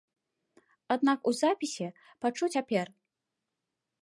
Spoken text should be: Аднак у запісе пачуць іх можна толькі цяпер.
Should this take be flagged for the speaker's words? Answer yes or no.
yes